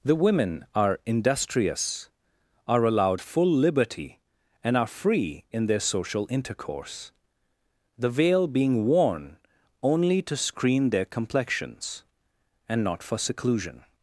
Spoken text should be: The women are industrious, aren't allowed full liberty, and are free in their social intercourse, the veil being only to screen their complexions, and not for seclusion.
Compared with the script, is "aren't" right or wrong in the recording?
wrong